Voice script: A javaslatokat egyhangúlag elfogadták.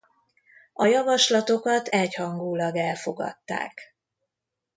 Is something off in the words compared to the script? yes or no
no